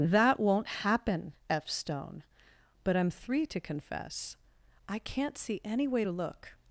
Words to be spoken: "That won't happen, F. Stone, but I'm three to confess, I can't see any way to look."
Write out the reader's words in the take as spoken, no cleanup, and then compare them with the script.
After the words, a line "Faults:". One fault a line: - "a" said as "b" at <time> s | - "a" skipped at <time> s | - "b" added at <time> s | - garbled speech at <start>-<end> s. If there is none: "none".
"That won't happen, F. Stone, but I'm three to confess, I can't see any way to look."
Faults:
none